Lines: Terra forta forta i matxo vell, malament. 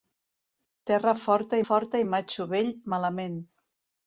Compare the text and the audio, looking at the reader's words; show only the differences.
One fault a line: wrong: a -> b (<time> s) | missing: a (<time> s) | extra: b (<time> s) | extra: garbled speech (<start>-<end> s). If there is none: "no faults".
no faults